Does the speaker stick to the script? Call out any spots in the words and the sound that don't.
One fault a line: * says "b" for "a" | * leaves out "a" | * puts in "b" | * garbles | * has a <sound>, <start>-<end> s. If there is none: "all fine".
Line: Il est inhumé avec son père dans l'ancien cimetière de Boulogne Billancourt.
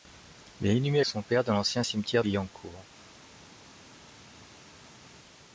* leaves out "avec"
* leaves out "de Boulogne"